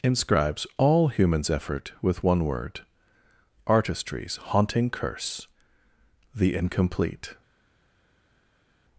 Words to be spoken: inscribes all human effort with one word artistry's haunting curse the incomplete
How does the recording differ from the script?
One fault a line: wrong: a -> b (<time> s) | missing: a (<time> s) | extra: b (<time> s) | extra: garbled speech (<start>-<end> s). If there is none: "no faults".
wrong: human -> humans (1.1 s)